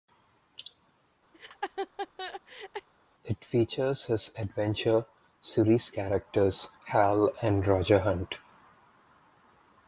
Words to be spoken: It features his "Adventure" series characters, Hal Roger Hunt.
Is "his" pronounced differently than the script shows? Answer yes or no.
no